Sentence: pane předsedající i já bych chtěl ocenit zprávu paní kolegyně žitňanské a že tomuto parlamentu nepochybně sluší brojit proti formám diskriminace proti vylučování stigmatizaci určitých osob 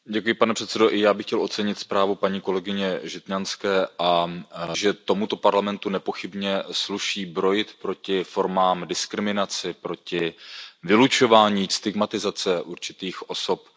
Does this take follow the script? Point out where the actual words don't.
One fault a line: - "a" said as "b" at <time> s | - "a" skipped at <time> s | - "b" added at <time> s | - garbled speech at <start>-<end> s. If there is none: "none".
none